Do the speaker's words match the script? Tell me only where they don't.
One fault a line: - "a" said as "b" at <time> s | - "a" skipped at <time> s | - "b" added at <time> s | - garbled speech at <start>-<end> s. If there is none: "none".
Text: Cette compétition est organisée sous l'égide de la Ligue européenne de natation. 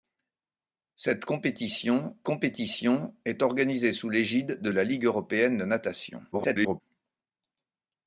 - "compétition" added at 2.2 s
- garbled speech at 6.3-6.8 s